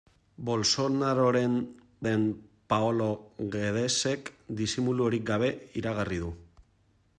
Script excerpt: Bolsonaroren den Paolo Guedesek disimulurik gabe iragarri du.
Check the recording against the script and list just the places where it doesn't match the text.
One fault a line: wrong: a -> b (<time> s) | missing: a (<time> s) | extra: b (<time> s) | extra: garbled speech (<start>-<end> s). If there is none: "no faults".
no faults